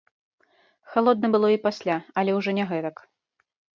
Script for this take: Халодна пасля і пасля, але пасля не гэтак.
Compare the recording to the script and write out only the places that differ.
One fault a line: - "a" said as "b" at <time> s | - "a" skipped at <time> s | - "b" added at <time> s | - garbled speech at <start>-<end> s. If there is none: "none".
- "пасля" said as "было" at 1.4 s
- "пасля" said as "ўжо" at 2.4 s